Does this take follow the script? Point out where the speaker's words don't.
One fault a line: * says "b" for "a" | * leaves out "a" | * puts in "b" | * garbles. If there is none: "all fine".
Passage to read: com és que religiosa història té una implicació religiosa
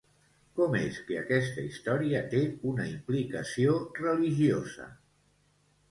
* says "aquesta" for "religiosa"